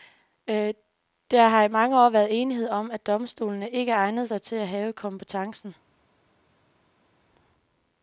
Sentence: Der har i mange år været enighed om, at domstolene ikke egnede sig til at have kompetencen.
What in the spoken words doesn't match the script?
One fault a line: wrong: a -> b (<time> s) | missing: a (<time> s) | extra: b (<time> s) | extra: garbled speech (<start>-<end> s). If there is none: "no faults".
no faults